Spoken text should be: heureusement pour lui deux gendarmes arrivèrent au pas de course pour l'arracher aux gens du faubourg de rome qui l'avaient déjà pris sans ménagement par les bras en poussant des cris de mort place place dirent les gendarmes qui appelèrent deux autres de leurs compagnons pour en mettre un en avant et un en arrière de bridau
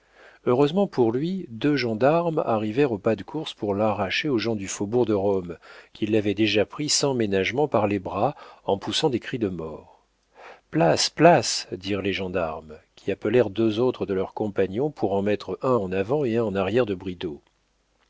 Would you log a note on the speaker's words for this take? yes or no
no